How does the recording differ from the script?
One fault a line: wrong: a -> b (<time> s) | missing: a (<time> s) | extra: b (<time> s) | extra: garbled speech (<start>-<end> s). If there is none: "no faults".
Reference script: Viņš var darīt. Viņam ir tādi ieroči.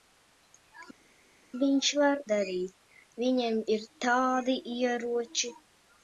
no faults